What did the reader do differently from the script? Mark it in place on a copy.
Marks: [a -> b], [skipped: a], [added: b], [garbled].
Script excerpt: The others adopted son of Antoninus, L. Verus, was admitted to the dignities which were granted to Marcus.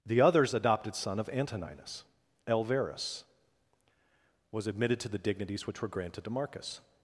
The others adopted son of Antoninus, L. Verus, was admitted to the dignities which were granted to Marcus.